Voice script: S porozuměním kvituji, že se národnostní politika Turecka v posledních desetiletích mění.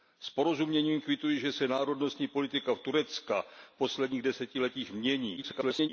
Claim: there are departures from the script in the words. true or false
true